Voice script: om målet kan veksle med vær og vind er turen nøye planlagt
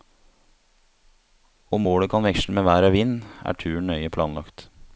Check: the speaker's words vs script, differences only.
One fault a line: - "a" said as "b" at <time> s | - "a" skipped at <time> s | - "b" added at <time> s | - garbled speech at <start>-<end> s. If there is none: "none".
none